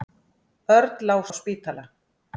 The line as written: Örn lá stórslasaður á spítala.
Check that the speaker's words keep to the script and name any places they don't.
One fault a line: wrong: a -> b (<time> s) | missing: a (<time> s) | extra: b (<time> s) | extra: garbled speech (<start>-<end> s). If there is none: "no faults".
missing: stórslasaður (1.2 s)